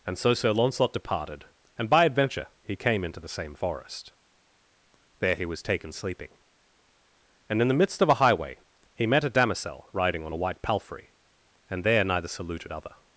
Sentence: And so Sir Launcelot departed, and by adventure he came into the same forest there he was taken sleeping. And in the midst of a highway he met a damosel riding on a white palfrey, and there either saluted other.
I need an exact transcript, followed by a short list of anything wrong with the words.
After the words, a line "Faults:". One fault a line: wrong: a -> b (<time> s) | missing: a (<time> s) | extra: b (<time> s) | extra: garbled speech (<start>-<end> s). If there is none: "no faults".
And so Sir Launcelot departed, and by adventure he came into the same forest there he was taken sleeping. And in the midst of a highway he met a damosel riding on a white palfrey, and there neither saluted other.
Faults:
wrong: either -> neither (12.0 s)